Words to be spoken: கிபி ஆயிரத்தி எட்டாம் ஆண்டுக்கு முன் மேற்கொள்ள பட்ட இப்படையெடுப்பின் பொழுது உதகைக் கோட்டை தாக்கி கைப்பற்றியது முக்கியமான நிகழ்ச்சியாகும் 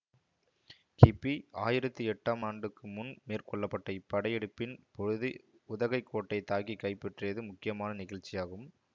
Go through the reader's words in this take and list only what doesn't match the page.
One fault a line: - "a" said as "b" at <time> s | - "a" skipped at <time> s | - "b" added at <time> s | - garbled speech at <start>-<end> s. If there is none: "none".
none